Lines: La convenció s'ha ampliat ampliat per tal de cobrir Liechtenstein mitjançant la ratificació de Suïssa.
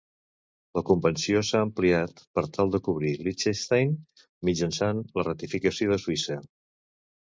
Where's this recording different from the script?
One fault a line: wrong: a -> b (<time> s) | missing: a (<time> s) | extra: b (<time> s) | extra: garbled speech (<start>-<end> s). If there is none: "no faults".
missing: ampliat (2.2 s)